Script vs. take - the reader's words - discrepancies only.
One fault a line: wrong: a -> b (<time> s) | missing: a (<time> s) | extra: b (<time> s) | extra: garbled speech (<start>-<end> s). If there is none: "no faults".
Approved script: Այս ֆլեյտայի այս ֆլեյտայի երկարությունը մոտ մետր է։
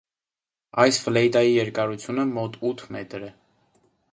missing: այս ֆլեյտայի (1.5 s)
extra: ութ (2.7 s)